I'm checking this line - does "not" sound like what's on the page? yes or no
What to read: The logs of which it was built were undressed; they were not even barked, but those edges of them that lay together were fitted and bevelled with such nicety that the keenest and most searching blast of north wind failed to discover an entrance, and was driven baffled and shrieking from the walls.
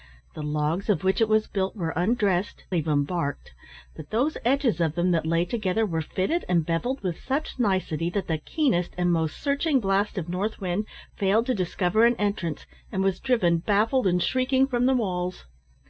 no